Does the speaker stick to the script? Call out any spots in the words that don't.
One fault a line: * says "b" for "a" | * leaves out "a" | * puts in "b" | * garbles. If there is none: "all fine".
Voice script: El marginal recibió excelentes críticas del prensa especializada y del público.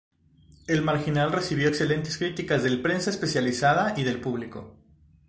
all fine